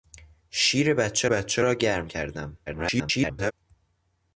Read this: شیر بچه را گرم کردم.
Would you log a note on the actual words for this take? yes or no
yes